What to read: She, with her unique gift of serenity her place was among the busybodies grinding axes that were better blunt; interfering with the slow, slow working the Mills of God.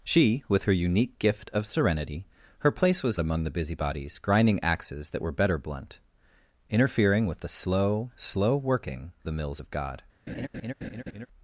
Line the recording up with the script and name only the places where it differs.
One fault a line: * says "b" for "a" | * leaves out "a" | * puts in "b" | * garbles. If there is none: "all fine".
all fine